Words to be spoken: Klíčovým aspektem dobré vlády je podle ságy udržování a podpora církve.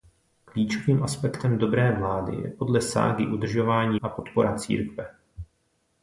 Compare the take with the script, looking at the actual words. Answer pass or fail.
pass